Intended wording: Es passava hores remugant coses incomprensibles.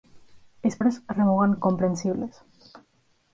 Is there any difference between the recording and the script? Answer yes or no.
yes